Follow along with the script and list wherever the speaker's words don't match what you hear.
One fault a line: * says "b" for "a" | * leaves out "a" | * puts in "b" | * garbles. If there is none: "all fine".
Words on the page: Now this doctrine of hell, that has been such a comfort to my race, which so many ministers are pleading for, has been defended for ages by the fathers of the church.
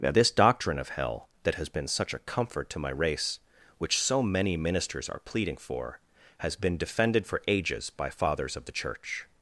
* leaves out "the"